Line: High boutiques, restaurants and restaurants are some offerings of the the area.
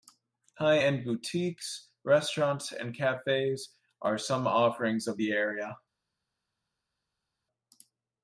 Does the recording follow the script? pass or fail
fail